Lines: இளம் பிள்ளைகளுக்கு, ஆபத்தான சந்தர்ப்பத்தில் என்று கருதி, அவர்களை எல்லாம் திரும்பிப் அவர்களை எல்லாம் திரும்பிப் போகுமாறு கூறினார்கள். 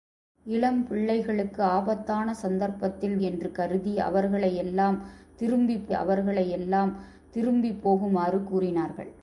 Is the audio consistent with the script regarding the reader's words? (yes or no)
yes